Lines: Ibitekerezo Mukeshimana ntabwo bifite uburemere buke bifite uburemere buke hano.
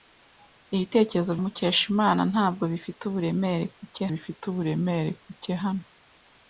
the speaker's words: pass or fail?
pass